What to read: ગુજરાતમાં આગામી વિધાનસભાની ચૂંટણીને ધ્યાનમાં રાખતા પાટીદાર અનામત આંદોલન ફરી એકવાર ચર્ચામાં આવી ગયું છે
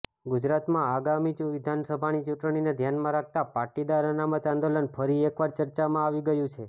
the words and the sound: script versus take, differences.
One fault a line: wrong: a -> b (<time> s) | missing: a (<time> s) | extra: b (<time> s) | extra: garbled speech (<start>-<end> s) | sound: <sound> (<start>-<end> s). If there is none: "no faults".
no faults